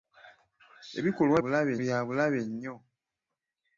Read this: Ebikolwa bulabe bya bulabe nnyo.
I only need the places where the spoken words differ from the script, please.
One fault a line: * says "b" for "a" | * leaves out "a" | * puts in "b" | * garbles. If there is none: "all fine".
all fine